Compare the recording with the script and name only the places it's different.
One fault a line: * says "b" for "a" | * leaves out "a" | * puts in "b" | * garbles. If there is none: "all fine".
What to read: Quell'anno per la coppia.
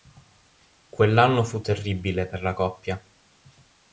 * puts in "fu terribile"